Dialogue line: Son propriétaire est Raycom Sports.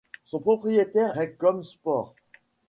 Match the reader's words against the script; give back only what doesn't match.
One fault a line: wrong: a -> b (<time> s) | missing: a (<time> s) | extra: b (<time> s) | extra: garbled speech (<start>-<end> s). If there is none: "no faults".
missing: est (1.2 s)